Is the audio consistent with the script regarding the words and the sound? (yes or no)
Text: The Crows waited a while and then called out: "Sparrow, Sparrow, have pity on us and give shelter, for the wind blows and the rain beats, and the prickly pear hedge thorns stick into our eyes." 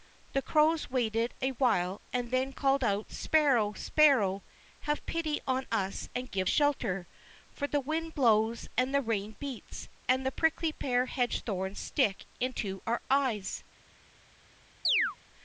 no